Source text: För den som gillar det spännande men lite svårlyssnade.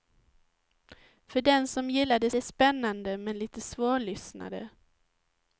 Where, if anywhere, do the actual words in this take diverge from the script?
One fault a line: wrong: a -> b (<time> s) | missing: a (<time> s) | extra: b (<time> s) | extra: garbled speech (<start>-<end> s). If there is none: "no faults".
extra: det (2.3 s)